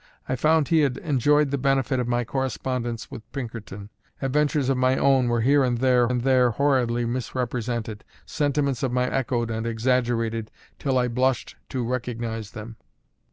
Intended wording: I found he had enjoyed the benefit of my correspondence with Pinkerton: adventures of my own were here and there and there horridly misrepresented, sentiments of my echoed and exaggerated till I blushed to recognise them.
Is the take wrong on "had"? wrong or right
right